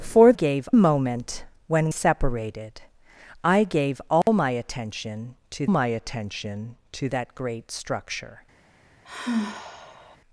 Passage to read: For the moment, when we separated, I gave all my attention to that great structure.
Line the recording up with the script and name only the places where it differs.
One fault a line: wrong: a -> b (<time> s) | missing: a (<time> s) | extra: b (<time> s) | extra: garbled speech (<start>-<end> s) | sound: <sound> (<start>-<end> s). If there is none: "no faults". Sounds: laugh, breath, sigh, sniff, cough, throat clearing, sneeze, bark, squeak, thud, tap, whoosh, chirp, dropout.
wrong: the -> gave (0.3 s)
missing: we (1.9 s)
sound: dropout (4.2-4.3 s)
extra: my attention to (5.7 s)
sound: sigh (9.0-10.2 s)